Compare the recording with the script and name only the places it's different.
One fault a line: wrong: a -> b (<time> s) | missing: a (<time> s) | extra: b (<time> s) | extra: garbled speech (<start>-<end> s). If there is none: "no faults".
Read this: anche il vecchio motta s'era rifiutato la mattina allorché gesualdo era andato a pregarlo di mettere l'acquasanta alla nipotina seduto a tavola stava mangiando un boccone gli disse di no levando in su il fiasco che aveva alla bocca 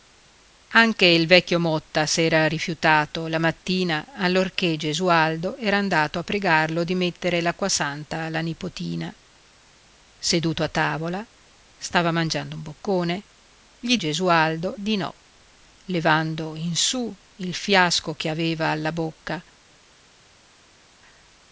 wrong: disse -> gesualdo (13.9 s)